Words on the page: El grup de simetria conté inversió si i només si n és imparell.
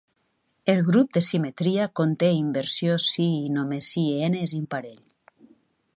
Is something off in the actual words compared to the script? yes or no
no